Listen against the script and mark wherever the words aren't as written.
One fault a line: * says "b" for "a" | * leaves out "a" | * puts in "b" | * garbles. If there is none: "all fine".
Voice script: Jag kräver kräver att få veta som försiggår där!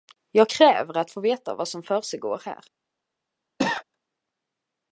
* leaves out "kräver"
* puts in "vad"
* says "här" for "där"